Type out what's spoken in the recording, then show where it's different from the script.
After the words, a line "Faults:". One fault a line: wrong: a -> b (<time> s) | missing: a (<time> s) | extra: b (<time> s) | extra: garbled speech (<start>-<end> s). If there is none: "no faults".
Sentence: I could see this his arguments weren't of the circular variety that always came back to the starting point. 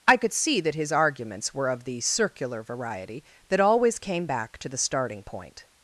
I could see that his arguments were of the circular variety that always came back to the starting point.
Faults:
wrong: this -> that (0.6 s)
wrong: weren't -> were (1.5 s)